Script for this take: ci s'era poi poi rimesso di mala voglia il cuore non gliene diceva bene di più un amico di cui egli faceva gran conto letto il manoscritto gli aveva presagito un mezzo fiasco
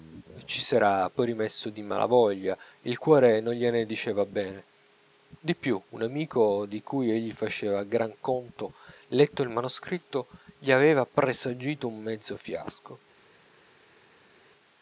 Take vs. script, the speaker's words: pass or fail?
fail